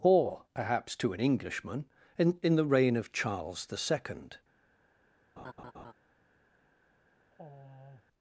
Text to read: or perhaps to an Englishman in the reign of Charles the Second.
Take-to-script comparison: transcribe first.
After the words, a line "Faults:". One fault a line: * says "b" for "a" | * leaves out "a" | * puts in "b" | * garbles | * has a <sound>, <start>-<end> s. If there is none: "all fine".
or perhaps to an Englishman in in the reign of Charles the Second.
Faults:
* puts in "in"
* has a laugh, 5.4-5.9 s
* has a sigh, 7.3-8.0 s